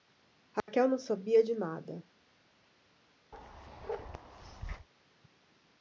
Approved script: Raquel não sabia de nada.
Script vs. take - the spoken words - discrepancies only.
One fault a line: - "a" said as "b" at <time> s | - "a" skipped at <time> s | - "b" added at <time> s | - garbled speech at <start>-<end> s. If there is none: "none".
none